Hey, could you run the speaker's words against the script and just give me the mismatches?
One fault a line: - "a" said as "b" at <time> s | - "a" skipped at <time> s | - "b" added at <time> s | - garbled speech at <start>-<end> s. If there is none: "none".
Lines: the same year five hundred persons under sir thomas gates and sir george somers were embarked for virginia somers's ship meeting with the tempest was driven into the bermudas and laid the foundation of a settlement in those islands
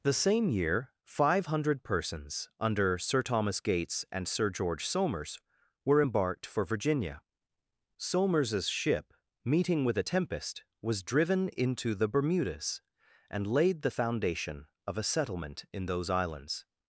- "the" said as "a" at 10.0 s